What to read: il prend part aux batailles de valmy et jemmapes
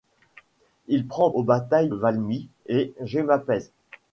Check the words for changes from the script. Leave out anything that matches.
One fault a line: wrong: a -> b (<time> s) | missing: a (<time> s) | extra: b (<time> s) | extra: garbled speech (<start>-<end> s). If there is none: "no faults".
missing: part (1.3 s)
missing: de (1.9 s)